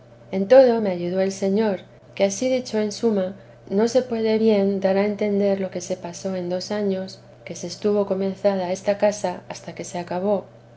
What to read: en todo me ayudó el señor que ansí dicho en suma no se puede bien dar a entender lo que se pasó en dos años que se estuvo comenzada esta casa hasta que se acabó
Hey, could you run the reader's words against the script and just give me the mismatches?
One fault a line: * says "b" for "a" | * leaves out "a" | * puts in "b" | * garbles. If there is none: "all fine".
all fine